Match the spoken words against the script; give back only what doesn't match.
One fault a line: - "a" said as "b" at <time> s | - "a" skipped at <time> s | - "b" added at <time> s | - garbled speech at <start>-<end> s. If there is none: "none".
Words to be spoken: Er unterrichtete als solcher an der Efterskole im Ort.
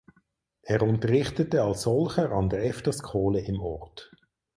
none